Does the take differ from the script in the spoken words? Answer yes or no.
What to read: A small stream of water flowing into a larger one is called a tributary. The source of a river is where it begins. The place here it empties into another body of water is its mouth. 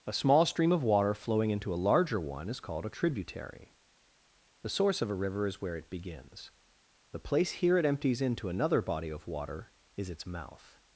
no